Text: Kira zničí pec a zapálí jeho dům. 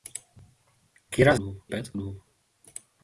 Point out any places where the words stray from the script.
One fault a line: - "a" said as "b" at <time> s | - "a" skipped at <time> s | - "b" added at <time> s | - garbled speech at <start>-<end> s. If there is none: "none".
- "zničí" said as "dům" at 1.3 s
- "zapálí jeho" skipped at 2.0 s